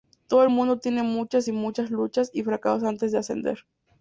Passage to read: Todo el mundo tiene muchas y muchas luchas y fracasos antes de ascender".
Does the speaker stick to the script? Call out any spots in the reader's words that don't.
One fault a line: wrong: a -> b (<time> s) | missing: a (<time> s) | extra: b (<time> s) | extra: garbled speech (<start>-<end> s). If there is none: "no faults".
no faults